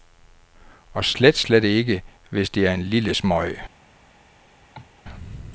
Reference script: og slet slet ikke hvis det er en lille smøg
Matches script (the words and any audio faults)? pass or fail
fail